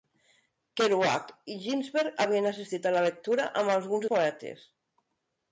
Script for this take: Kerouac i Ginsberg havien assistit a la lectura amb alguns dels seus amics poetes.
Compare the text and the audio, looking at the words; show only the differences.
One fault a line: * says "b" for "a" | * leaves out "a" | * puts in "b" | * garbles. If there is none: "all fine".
* leaves out "dels seus amics"